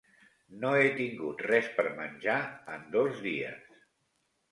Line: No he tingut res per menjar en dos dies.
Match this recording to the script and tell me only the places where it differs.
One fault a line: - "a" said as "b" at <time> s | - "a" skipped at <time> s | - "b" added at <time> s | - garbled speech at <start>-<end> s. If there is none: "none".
none